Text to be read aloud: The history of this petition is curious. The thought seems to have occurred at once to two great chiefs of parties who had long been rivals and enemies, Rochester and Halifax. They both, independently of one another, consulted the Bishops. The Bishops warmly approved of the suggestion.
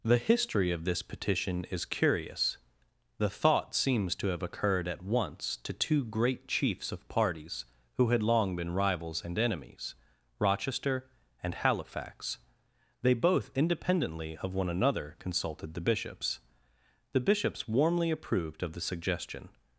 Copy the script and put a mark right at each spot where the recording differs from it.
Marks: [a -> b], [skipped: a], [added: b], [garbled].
The history of this petition is curious. The thought seems to have occurred at once to two great chiefs of parties who had long been rivals and enemies, Rochester and Halifax. They both, independently of one another, consulted the Bishops. The Bishops warmly approved of the suggestion.